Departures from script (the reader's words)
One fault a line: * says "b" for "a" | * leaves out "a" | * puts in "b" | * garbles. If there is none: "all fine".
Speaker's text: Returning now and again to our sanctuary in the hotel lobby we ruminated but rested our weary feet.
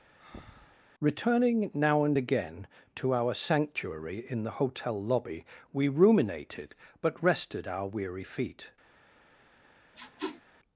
all fine